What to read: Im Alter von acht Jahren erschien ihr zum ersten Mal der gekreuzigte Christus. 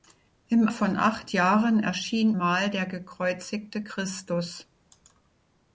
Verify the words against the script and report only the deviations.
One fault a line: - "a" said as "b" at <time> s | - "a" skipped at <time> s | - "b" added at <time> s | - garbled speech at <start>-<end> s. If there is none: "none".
- "Alter" skipped at 0.7 s
- "ihr zum ersten" skipped at 2.3 s